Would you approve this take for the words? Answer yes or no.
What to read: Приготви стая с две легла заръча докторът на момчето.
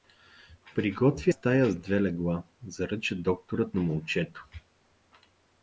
yes